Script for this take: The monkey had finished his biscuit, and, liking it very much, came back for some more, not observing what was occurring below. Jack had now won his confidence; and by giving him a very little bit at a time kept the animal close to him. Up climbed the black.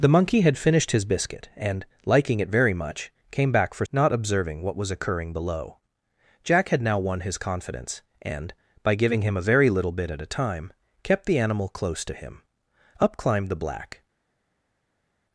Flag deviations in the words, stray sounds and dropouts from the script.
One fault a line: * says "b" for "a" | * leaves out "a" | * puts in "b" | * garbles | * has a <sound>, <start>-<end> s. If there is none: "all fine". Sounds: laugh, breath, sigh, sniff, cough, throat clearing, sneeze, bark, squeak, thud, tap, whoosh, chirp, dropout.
* leaves out "some more"